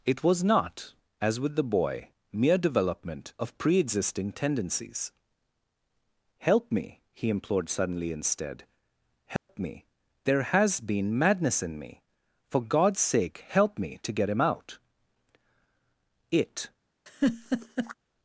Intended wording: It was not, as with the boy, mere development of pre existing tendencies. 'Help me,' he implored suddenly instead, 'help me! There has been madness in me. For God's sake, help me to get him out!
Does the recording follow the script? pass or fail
fail